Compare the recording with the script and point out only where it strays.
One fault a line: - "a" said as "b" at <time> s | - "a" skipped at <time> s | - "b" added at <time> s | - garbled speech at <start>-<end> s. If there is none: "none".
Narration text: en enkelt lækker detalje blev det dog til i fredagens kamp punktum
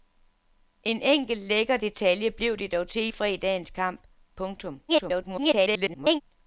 - garbled speech at 4.9-6.2 s